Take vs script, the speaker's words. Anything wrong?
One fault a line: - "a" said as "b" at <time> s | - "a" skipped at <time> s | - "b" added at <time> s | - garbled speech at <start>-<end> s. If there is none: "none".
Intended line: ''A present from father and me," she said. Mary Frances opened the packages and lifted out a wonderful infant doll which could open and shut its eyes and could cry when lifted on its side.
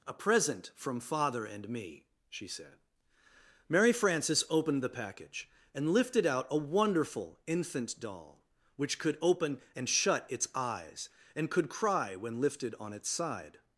- "packages" said as "package" at 5.0 s